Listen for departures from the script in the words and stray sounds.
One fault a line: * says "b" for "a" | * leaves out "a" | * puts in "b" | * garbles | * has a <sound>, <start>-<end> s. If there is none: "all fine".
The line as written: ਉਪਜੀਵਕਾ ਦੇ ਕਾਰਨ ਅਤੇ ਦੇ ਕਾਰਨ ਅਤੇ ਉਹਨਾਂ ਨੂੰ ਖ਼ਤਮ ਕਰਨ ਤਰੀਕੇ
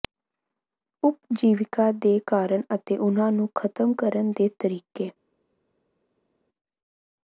* leaves out "ਦੇ ਕਾਰਨ ਅਤੇ"
* puts in "ਦੇ"